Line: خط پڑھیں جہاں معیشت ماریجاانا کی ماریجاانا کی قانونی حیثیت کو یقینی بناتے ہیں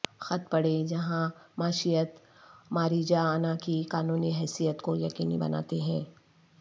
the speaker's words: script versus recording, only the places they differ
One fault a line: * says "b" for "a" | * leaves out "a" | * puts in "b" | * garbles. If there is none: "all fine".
* leaves out "ماریجاانا کی"